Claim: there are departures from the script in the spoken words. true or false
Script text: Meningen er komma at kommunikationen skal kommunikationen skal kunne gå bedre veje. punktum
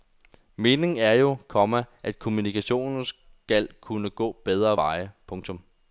true